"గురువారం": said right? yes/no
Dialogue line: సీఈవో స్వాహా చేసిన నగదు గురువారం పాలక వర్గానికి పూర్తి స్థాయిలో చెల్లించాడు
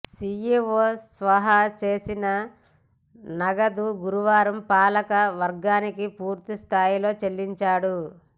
yes